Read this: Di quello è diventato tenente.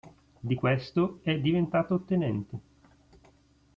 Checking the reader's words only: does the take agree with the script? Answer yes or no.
no